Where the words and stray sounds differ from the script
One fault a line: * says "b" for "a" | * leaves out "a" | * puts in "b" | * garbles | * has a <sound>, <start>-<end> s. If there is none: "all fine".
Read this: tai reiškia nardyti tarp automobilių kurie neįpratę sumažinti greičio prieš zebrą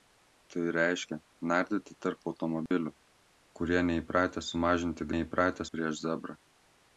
* has a dropout, 2.7-2.7 s
* says "neįpratę" for "greičio"